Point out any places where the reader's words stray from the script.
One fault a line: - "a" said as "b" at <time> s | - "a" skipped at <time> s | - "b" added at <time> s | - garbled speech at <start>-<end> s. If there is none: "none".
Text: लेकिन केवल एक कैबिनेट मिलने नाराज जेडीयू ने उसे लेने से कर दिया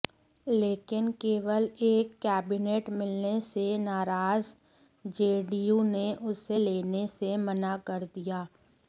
- "से" added at 3.4 s
- "मना" added at 7.4 s